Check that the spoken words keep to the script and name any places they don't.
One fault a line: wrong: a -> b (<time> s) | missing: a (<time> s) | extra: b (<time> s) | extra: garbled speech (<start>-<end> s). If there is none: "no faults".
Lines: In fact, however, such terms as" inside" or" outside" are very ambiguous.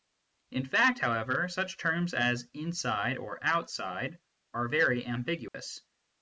no faults